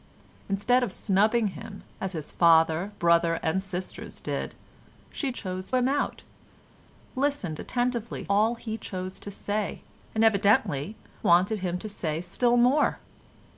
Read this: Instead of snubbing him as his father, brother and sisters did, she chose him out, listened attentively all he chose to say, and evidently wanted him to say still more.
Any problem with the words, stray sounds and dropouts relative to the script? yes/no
no